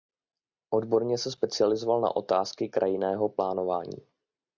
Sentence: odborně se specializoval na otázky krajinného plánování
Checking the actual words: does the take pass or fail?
pass